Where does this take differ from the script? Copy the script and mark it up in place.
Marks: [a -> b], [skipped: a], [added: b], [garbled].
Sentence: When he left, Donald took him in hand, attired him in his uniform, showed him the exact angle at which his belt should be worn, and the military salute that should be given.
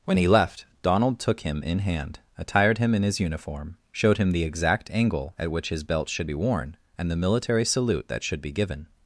When he left, Donald took him in hand, attired him in his uniform, showed him the exact angle at which his belt should be worn, and the military salute that should be given.